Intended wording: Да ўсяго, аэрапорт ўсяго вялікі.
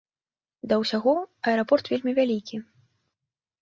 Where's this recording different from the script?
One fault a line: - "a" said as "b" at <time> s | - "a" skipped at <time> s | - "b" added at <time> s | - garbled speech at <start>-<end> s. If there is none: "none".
- "ўсяго" said as "вельмі" at 2.0 s